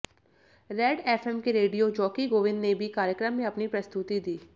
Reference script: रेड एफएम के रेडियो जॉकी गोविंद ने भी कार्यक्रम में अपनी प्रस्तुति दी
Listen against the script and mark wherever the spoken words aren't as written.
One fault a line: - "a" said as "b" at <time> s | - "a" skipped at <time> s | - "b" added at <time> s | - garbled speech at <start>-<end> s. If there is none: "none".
none